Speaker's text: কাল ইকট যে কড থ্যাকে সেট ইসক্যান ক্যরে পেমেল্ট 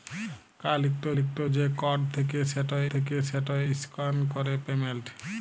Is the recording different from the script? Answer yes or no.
yes